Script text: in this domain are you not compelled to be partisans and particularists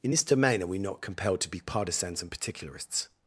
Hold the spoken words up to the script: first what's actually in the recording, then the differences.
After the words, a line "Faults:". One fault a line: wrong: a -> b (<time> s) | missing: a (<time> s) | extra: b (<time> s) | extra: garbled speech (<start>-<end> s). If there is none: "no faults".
in this domain are we not compelled to be partisans and particularists
Faults:
wrong: you -> we (0.7 s)